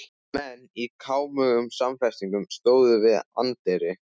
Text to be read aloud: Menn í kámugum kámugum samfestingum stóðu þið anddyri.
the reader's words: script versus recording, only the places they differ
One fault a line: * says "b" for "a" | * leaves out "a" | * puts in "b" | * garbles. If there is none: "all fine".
* leaves out "kámugum"
* says "við" for "þið"